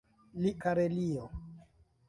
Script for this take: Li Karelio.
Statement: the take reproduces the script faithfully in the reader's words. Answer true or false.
true